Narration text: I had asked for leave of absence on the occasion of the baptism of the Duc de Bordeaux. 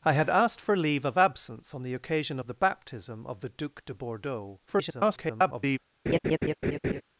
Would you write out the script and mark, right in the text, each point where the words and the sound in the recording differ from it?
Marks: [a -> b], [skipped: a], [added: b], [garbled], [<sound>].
I had asked for leave of absence on the occasion of the baptism of the Duc de Bordeaux. [garbled] [laugh]